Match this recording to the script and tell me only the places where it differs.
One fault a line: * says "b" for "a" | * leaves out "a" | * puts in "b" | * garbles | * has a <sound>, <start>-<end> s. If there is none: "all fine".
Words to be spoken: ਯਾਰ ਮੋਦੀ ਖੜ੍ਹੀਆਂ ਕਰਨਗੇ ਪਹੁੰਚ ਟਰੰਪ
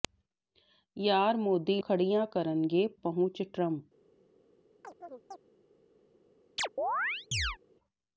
* has a chirp, 4.8-5.4 s
* has a chirp, 6.6-7.6 s